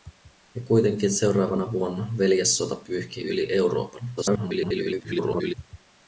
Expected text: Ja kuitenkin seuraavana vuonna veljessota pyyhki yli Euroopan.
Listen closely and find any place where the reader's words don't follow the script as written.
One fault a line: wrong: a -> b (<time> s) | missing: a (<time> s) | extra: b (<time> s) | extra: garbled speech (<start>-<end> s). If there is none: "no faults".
extra: garbled speech (4.2-5.5 s)